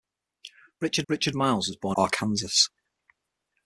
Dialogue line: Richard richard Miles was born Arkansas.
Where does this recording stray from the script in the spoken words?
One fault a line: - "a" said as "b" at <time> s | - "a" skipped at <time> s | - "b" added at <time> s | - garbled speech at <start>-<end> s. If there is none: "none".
none